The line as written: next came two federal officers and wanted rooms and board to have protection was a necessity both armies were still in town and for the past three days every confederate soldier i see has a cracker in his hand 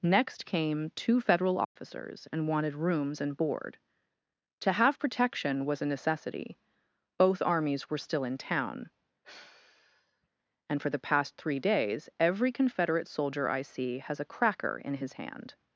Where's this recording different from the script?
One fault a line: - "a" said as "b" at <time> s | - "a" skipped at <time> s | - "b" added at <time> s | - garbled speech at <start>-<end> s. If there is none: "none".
none